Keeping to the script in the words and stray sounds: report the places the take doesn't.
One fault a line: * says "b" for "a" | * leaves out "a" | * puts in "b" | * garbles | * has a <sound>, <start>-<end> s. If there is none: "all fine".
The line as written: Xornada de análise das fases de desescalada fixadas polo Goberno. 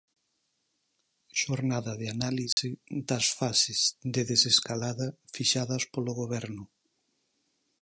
* has a dropout, 2.5-2.6 s